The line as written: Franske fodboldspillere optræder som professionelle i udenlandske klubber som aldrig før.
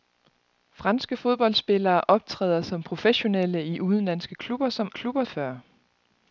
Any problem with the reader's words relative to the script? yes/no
yes